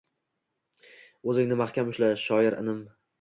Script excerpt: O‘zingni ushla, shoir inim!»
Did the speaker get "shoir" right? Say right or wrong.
right